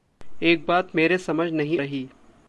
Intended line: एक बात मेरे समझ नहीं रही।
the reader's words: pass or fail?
pass